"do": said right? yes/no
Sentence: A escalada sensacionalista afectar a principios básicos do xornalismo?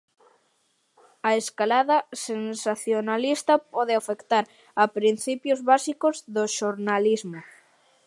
yes